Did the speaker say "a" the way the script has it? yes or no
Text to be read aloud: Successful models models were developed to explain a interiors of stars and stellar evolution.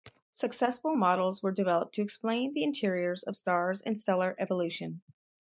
no